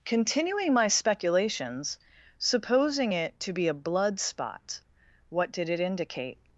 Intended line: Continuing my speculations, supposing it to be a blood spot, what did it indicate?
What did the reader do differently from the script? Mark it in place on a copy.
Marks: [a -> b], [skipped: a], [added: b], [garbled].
Continuing my speculations, supposing it to be a blood spot, what did it indicate?